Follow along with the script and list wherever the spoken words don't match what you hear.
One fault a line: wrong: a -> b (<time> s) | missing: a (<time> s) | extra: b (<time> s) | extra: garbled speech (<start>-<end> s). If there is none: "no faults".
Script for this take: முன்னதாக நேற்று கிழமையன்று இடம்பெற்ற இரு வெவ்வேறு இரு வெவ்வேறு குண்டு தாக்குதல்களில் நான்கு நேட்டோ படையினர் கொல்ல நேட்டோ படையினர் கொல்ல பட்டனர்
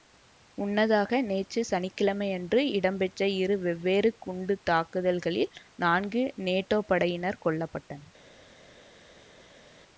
extra: சனி (1.6 s)
missing: இரு வெவ்வேறு (4.1 s)
missing: நேட்டோ படையினர் கொல்ல (7.7 s)